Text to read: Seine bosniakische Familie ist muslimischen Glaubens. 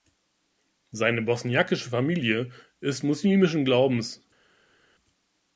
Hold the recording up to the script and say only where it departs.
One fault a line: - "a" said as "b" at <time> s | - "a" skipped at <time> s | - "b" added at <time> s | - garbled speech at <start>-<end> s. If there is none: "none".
none